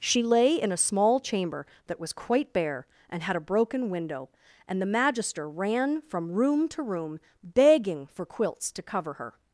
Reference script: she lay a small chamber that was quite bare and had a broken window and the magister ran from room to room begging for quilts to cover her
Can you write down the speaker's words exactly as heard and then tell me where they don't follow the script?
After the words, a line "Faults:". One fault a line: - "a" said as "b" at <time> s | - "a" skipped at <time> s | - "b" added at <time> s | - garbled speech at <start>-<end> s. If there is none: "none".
she lay in a small chamber that was quite bare and had a broken window and the magister ran from room to room begging for quilts to cover her
Faults:
- "in" added at 0.6 s